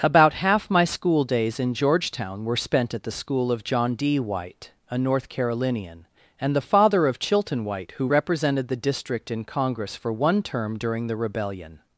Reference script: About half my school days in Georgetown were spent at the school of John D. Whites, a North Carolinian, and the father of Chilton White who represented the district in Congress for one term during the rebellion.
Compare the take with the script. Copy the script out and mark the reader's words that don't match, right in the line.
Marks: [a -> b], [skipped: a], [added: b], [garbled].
About half my school days in Georgetown were spent at the school of John D. [Whites, -> White] a North Carolinian, and the father of Chilton White who represented the district in Congress for one term during the rebellion.